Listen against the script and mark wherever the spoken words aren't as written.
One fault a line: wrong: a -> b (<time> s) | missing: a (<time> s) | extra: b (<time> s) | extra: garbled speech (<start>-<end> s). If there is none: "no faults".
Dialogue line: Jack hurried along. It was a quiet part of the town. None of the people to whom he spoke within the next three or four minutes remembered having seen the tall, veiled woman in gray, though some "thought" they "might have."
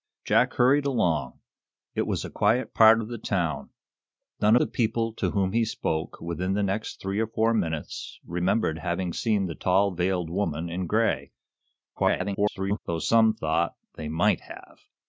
missing: of (4.5 s)
extra: garbled speech (12.0-12.8 s)